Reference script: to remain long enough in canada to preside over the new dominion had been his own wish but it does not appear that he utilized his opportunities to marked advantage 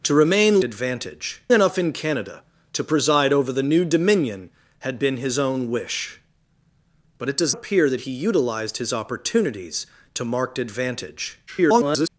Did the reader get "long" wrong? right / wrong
wrong